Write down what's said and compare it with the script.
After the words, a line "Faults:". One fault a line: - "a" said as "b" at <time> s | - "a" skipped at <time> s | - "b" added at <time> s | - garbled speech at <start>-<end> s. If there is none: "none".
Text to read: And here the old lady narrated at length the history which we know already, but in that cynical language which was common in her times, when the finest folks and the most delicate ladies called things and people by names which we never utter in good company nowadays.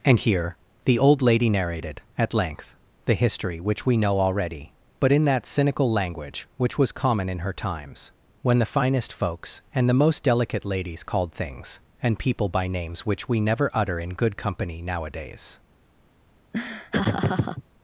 And here the old lady narrated at length the history which we know already, but in that cynical language which was common in her times, when the finest folks and the most delicate ladies called things and people by names which we never utter in good company nowadays.
Faults:
none